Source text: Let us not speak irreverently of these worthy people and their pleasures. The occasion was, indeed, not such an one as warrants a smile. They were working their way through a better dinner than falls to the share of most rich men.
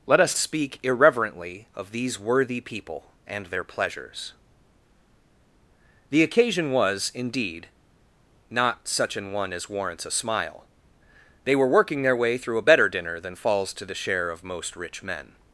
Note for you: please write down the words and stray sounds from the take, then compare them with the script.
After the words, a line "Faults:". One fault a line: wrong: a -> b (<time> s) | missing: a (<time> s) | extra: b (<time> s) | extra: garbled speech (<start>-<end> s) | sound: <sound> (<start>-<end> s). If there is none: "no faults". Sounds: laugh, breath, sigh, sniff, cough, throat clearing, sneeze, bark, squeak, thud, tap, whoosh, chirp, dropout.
Let us speak irreverently of these worthy people and their pleasures. The occasion was, indeed, not such an one as warrants a smile. They were working their way through a better dinner than falls to the share of most rich men.
Faults:
missing: not (0.3 s)